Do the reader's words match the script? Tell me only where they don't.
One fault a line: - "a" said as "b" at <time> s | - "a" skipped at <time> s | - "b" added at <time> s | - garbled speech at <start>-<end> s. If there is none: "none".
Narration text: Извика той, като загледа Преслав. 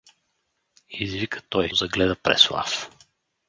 - "като" skipped at 1.7 s